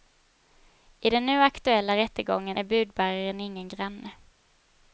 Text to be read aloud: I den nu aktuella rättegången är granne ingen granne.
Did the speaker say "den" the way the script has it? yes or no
yes